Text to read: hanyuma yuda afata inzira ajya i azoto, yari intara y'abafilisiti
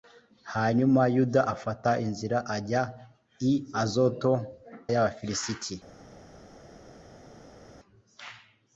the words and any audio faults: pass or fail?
fail